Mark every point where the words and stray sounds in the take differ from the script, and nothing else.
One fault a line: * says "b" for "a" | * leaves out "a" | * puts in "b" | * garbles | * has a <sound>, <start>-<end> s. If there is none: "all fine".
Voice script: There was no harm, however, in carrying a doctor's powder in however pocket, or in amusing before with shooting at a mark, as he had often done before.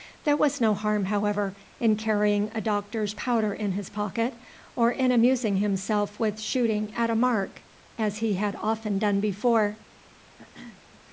* says "his" for "however"
* says "himself" for "before"
* has a throat clearing, 10.4-10.8 s